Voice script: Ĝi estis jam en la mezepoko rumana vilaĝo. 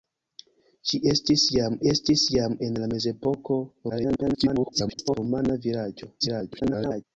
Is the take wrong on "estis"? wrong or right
right